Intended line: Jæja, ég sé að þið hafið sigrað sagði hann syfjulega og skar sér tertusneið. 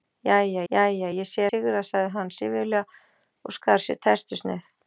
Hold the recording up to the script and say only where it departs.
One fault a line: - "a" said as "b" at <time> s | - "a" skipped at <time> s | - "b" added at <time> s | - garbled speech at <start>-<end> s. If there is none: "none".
- "jæja" added at 0.7 s
- "að þið hafið" skipped at 1.5 s